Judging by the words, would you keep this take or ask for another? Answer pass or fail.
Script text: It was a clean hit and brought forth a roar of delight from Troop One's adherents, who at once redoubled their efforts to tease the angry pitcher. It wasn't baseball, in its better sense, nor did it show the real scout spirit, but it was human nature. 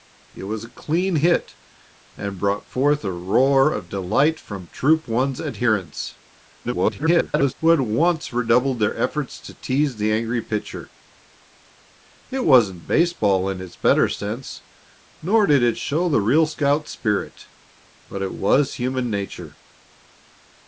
fail